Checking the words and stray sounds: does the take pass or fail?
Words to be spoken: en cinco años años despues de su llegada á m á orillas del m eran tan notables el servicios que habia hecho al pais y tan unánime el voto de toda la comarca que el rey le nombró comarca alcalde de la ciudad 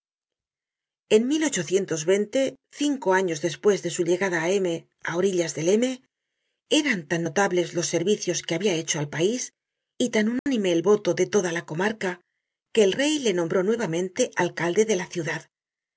fail